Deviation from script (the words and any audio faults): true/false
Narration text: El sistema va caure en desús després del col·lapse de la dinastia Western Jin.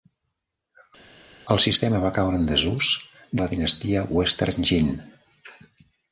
true